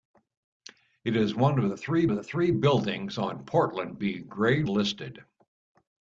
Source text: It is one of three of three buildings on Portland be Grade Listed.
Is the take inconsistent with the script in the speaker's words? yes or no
no